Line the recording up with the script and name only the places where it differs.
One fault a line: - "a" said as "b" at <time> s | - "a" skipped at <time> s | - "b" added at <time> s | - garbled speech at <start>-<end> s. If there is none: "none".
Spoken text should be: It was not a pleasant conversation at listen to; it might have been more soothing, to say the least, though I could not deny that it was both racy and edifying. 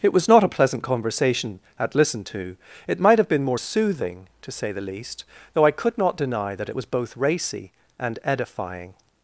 none